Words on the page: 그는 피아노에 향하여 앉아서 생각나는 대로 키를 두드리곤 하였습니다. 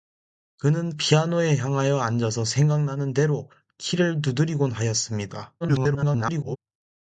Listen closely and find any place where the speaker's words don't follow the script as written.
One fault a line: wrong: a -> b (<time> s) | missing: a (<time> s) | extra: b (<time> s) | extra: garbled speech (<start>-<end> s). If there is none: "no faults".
extra: garbled speech (5.6-6.6 s)